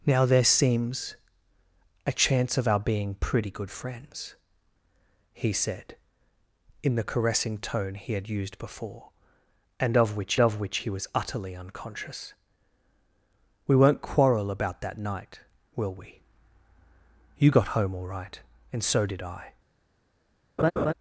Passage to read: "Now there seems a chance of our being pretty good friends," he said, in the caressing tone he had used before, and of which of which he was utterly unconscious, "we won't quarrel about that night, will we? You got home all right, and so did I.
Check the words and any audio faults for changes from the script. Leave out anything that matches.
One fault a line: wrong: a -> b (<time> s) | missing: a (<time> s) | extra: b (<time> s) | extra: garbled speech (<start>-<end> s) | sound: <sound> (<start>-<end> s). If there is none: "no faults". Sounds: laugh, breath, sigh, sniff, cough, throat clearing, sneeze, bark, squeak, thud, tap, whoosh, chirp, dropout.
sound: laugh (20.6-20.9 s)